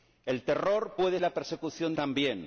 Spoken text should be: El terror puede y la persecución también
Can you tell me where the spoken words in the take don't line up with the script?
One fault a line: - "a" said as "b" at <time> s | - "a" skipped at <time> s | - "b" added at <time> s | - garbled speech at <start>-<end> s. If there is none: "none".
none